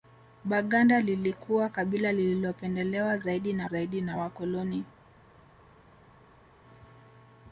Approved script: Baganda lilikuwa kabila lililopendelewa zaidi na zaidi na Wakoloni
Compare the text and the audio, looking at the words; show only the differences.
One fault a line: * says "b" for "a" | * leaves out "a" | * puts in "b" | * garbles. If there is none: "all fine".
all fine